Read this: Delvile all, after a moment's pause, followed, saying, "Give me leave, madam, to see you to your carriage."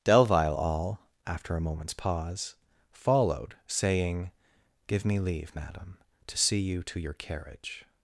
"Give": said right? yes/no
yes